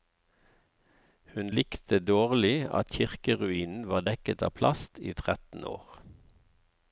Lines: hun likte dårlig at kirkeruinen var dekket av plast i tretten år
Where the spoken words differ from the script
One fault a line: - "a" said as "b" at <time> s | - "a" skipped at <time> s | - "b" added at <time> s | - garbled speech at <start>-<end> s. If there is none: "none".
none